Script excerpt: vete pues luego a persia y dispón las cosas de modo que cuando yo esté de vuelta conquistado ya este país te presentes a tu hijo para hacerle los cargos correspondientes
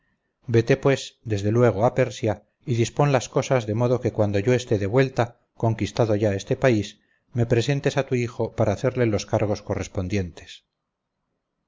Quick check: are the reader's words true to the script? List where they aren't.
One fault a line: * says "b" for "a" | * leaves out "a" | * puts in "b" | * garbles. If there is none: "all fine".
* puts in "desde"
* says "me" for "te"